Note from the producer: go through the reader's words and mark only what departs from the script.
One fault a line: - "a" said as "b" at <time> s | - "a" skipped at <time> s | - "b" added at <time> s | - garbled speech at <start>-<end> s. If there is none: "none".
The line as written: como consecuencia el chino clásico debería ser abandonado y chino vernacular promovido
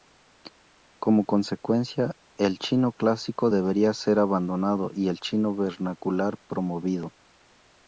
- "el" added at 5.1 s